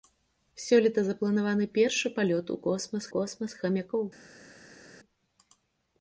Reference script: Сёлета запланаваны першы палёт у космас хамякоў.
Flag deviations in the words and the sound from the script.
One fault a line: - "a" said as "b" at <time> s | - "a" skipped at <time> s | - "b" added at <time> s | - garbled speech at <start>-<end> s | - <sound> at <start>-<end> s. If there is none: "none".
- "космас" added at 3.1 s